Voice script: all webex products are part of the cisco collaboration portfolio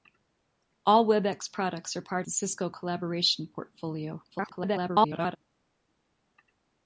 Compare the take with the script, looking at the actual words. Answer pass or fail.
fail